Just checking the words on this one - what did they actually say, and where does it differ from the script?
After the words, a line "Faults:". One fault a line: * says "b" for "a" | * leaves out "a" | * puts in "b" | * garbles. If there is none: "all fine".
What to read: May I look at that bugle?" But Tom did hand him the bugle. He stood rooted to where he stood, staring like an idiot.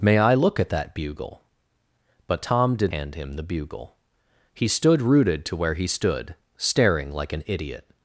May I look at that bugle?" But Tom did hand him the bugle. He stood rooted to where he stood, staring like an idiot.
Faults:
all fine